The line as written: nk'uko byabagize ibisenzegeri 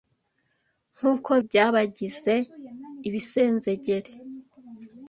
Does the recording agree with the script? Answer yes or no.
yes